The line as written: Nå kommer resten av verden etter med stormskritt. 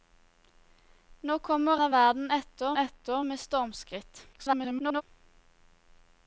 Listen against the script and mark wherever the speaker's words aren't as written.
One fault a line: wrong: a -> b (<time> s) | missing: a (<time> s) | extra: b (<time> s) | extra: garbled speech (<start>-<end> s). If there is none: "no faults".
missing: resten (1.8 s)
extra: etter (2.8 s)
extra: garbled speech (4.3-5.0 s)